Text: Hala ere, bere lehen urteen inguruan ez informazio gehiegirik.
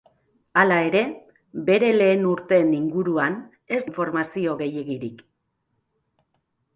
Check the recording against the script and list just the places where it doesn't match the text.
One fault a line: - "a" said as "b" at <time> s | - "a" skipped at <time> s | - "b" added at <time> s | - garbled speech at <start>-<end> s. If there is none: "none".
none